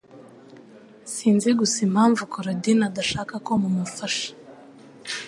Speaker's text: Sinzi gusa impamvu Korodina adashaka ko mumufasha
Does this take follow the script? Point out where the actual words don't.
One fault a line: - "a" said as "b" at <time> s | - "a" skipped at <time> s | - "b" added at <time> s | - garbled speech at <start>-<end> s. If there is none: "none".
none